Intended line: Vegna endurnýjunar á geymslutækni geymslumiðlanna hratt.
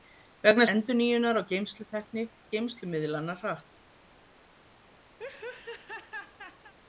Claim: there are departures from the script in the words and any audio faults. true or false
true